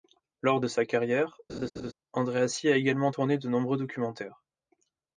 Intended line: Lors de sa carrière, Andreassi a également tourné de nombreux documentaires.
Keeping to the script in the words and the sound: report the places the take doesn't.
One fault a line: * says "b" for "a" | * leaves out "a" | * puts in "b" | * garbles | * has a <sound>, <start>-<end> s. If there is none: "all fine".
* has a laugh, 1.5-1.9 s